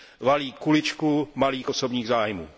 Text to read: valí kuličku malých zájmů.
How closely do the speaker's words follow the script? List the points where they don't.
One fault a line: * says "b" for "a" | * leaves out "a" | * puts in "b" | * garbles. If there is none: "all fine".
* puts in "osobních"